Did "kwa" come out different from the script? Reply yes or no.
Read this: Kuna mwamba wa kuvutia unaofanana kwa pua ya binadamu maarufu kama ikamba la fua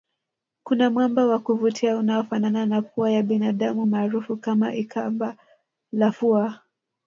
yes